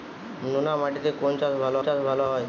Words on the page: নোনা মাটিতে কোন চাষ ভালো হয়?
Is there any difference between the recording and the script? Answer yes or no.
yes